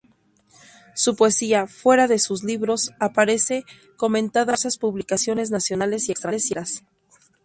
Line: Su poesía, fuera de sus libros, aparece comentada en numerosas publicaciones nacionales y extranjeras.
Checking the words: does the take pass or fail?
pass